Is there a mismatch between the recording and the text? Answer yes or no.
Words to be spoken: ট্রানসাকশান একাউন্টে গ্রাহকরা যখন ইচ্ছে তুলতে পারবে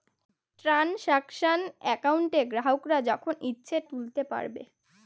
no